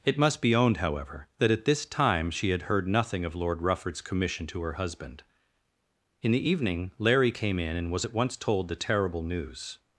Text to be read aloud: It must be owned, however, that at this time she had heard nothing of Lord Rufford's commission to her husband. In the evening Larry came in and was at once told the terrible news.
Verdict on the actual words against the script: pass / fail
pass